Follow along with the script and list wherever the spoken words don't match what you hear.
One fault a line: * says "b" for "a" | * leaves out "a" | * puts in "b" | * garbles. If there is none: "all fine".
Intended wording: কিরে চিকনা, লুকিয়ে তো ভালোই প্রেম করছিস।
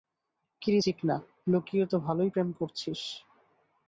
all fine